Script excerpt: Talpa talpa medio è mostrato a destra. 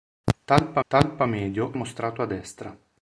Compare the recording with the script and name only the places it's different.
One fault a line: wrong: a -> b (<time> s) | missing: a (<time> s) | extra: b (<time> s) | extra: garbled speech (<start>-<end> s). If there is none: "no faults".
no faults